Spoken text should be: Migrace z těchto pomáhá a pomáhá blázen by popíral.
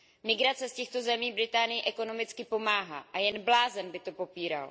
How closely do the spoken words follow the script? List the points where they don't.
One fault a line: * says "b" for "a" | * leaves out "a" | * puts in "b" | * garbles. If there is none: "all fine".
* puts in "zemí Británii ekonomicky"
* says "jen" for "pomáhá"
* puts in "to"